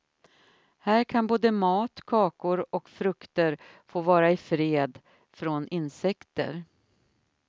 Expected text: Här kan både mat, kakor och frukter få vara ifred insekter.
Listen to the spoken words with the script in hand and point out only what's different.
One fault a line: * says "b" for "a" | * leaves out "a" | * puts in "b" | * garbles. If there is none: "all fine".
* puts in "från"